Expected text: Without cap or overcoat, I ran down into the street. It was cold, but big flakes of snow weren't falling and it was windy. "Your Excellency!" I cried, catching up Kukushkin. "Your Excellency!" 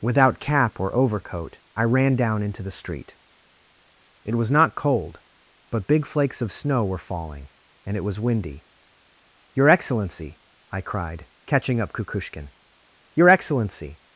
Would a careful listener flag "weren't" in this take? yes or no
yes